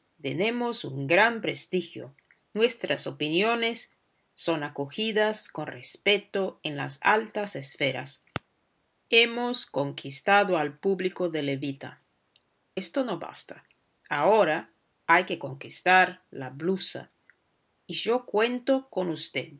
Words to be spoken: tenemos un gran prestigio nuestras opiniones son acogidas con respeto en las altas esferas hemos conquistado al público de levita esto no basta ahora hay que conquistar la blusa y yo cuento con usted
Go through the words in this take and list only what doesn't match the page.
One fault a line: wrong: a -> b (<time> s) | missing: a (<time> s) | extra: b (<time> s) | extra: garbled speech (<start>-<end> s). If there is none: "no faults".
no faults